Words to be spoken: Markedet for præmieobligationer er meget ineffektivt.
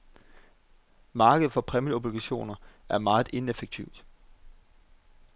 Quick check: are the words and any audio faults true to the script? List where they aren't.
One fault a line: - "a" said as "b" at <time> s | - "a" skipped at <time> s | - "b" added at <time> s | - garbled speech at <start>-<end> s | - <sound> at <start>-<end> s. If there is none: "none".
none